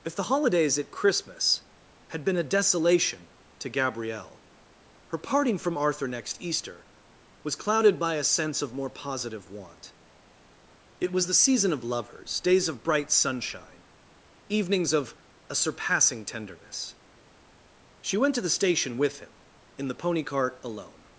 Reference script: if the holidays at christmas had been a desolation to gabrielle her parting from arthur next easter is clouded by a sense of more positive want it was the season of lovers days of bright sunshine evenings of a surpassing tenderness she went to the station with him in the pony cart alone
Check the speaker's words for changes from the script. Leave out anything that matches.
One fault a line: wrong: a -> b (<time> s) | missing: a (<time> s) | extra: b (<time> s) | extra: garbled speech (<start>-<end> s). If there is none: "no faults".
wrong: is -> was (7.4 s)